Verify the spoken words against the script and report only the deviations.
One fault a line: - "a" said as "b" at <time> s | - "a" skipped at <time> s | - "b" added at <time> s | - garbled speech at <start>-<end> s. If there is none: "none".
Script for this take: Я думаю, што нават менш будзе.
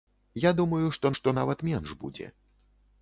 - "што" added at 1.2 s